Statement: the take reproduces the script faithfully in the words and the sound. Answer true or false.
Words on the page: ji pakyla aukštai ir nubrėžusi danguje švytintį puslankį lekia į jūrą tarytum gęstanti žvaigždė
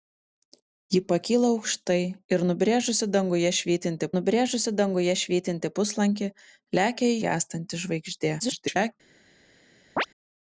false